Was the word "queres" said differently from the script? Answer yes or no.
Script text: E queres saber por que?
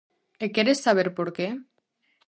no